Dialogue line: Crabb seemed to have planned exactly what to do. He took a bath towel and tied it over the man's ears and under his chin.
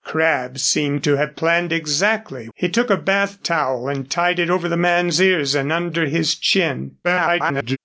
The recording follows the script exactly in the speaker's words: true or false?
false